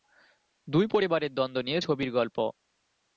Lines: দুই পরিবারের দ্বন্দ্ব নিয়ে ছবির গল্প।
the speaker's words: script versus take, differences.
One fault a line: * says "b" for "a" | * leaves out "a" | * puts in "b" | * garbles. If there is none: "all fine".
all fine